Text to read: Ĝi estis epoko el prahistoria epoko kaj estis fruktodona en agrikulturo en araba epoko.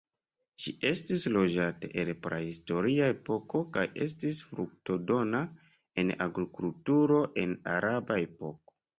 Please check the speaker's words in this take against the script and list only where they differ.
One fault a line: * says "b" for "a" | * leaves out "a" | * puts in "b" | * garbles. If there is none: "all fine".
* says "loĝata" for "epoko"